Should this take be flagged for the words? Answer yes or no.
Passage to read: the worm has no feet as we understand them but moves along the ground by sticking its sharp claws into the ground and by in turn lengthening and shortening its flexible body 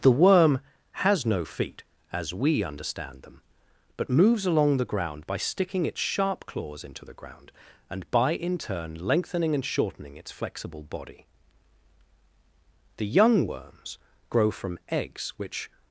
yes